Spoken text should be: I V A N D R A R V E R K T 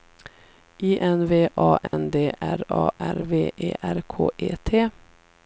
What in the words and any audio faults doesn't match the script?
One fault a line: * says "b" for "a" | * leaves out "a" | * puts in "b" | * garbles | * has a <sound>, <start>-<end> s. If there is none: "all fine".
* puts in "N"
* has a dropout, 1.9-1.9 s
* puts in "E"